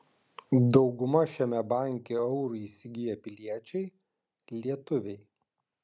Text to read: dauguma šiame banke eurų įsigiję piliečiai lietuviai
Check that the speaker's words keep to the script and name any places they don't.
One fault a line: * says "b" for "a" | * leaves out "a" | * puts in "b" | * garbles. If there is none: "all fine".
all fine